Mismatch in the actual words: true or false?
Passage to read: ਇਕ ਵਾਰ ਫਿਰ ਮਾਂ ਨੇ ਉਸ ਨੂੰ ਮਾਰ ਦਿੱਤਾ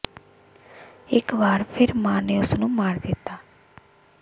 false